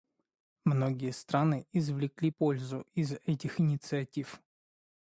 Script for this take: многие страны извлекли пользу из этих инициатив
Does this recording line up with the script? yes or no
yes